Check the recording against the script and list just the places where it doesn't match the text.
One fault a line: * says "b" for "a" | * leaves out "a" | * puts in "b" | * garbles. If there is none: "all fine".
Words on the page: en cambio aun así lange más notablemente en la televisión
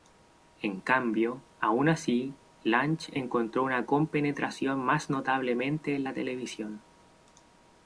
* puts in "encontró una compenetración"